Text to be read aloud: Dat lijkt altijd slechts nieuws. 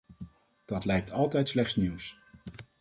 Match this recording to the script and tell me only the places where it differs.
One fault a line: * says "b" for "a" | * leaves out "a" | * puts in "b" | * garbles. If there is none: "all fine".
all fine